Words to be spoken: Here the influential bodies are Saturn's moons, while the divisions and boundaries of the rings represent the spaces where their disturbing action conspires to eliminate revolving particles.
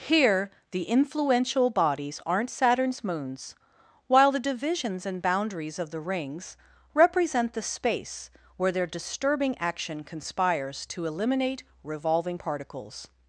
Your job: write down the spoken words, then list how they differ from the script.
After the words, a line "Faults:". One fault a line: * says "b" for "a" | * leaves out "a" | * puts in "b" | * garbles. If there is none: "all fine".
Here the influential bodies aren't Saturn's moons, while the divisions and boundaries of the rings represent the space where their disturbing action conspires to eliminate revolving particles.
Faults:
* says "aren't" for "are"
* says "space" for "spaces"